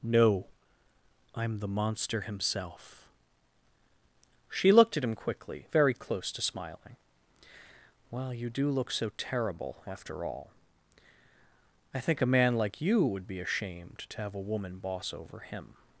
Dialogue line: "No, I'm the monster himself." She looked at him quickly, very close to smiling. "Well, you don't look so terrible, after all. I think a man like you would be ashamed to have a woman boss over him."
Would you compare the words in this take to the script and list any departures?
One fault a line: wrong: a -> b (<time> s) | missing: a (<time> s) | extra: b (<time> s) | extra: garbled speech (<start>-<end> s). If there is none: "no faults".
wrong: don't -> do (8.5 s)